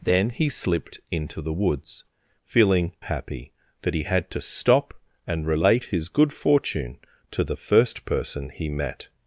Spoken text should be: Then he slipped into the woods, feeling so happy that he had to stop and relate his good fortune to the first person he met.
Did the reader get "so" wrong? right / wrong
wrong